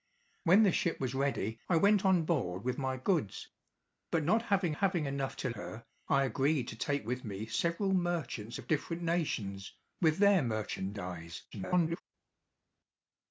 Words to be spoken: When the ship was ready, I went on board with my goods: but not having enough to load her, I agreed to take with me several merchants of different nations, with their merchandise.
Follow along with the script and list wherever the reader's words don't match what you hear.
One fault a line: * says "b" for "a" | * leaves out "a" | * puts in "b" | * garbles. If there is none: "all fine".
* puts in "having"
* leaves out "load"
* garbles